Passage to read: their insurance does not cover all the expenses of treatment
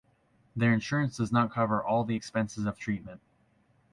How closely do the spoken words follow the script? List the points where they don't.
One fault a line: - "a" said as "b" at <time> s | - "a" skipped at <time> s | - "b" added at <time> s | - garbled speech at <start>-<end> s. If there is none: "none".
none